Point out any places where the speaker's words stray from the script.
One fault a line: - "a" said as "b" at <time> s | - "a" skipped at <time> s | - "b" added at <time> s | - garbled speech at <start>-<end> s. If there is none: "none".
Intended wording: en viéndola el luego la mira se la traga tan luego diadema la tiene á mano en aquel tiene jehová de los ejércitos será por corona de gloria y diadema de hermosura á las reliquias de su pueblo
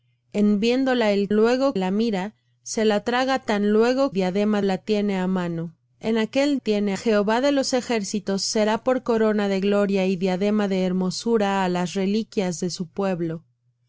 none